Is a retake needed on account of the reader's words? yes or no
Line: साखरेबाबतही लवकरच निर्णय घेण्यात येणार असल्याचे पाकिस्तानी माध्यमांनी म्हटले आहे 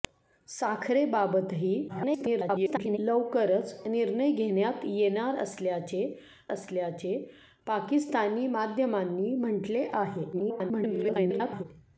yes